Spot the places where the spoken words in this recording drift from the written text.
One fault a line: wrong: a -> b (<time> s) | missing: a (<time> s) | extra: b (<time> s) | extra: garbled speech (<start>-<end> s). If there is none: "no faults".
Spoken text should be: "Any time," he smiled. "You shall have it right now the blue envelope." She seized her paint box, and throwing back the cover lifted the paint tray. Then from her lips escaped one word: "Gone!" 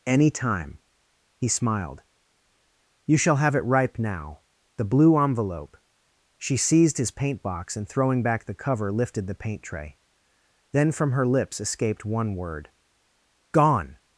wrong: right -> ripe (3.6 s)
wrong: her -> his (7.0 s)